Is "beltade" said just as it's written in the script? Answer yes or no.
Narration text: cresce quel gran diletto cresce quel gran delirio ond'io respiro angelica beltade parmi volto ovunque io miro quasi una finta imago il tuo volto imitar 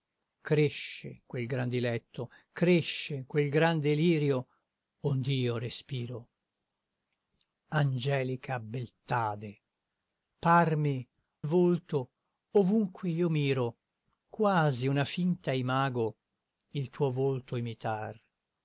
yes